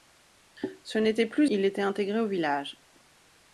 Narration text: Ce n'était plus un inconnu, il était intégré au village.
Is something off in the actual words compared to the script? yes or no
yes